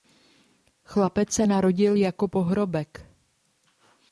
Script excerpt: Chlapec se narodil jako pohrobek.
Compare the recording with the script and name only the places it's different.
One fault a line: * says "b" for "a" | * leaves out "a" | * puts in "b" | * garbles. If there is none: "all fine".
all fine